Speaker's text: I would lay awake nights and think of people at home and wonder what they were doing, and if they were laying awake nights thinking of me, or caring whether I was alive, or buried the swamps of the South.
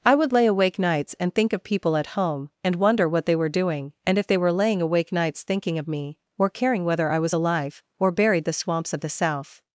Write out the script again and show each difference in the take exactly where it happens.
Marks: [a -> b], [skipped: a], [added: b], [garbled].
I would lay awake nights and think of people at home and wonder what they were doing, and if they were laying awake nights thinking of me, or caring whether I was alive, or buried the swamps of the South.